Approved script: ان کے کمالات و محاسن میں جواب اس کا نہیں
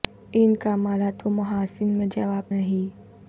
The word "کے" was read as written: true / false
false